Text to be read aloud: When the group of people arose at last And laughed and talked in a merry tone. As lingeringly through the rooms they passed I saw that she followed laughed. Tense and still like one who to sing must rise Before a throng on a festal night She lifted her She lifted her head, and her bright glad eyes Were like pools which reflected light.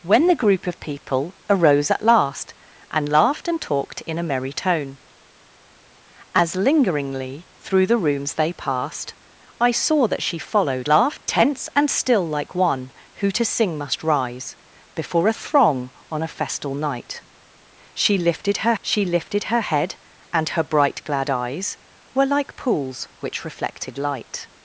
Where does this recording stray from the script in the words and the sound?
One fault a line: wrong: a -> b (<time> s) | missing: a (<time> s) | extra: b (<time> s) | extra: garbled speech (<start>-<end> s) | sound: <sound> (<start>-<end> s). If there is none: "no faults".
no faults